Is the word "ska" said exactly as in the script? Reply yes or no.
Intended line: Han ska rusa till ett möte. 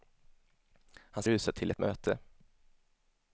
no